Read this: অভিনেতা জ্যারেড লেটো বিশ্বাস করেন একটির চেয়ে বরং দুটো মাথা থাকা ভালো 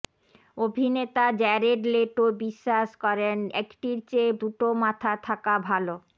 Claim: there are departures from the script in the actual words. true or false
true